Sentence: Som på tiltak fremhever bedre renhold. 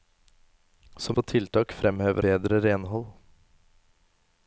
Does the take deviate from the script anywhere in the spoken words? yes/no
no